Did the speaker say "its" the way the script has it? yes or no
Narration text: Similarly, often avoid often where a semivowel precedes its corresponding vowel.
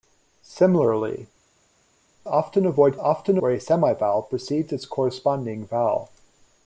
yes